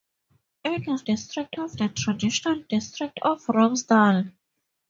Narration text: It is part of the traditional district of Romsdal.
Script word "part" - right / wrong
wrong